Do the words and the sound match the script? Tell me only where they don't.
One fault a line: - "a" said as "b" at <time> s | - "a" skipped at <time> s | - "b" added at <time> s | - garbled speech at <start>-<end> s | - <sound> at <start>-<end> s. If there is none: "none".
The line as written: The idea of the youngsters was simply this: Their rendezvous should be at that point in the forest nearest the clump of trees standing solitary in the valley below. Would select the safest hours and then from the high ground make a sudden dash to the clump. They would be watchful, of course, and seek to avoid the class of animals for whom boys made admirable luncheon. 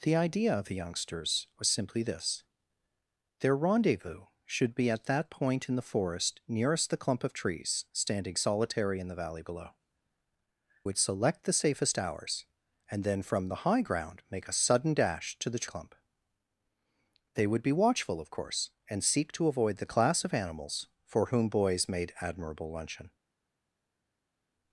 none